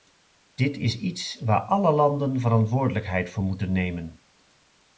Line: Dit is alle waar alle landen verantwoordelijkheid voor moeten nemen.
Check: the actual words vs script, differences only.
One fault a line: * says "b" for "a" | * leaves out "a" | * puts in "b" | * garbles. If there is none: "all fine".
* says "iets" for "alle"